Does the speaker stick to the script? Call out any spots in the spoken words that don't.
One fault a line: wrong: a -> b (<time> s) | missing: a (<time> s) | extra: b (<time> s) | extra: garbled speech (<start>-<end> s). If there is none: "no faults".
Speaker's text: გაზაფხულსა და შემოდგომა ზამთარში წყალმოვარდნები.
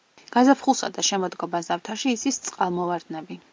extra: იცის (2.2 s)